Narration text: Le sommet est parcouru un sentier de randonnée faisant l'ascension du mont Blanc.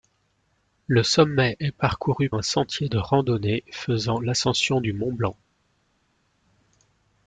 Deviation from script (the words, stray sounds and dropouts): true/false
false